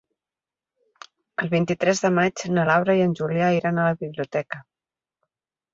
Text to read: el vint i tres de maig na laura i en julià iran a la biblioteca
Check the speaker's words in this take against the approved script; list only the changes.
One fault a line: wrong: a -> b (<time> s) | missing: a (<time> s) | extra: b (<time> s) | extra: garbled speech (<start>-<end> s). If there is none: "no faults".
no faults